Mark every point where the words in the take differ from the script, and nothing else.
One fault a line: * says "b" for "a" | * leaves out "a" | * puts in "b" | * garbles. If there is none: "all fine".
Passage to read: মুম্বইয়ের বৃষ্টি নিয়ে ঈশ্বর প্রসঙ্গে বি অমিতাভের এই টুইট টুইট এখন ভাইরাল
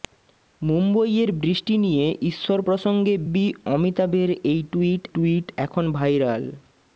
all fine